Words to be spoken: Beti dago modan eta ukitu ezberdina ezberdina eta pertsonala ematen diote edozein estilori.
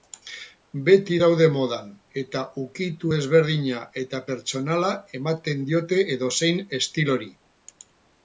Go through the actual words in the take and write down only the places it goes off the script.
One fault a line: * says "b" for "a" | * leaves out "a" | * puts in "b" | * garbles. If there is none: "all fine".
* says "daude" for "dago"
* leaves out "ezberdina"